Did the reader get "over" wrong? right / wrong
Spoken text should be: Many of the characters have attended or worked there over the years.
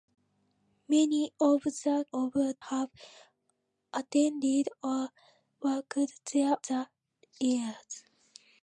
wrong